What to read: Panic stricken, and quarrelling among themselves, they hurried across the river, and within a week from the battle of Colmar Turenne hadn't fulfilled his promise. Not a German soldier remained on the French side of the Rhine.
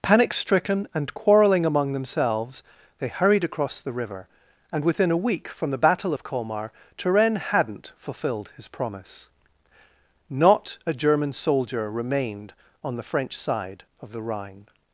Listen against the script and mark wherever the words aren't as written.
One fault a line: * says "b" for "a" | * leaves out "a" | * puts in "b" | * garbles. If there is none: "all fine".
all fine